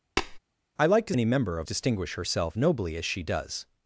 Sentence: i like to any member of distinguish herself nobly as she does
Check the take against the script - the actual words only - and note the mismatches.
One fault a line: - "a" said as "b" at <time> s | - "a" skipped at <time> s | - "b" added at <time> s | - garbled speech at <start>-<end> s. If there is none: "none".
none